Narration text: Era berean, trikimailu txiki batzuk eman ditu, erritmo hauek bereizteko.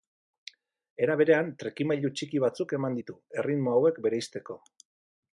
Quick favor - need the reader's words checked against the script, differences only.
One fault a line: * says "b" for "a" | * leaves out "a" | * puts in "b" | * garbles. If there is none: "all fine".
all fine